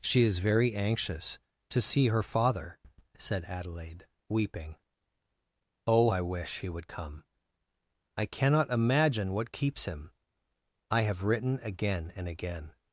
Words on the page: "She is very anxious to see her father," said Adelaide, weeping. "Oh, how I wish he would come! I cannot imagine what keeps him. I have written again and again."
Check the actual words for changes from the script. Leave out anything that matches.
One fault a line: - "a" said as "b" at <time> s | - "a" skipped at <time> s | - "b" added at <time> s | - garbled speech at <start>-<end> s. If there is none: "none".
- "how" skipped at 6.1 s